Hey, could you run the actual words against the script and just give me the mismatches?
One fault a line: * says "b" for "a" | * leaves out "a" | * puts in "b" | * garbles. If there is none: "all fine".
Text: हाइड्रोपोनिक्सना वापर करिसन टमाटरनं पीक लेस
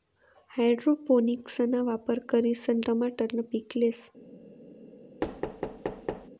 all fine